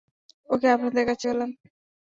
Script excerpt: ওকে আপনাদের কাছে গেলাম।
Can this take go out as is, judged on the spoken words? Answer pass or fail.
pass